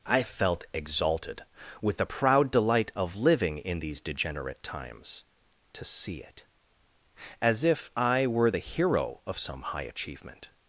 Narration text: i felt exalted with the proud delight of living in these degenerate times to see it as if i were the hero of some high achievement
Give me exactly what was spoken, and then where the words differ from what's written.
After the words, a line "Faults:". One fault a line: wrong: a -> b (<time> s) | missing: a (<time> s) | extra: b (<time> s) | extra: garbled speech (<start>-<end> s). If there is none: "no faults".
i felt exalted with the proud delight of living in these degenerate times to see it as if i were the hero of some high achievement
Faults:
no faults